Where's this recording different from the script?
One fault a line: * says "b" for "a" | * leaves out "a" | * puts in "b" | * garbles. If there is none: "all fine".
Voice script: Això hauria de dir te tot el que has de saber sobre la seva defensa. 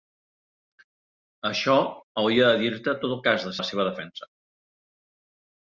* leaves out "saber sobre"